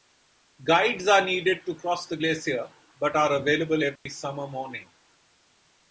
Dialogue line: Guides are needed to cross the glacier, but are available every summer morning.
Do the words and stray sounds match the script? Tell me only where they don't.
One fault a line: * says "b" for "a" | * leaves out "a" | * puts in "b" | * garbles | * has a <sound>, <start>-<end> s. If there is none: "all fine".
* has a dropout, 4.0-4.1 s